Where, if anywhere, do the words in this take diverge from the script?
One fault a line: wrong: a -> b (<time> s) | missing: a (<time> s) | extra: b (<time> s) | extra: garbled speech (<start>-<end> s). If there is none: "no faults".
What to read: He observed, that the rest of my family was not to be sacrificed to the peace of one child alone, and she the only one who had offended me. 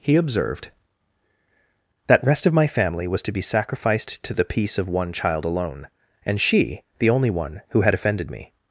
missing: the (2.2 s)
missing: not (3.2 s)